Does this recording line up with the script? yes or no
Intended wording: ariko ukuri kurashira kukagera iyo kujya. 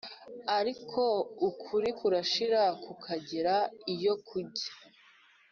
yes